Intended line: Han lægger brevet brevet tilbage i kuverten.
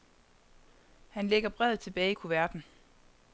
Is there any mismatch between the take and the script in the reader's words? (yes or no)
yes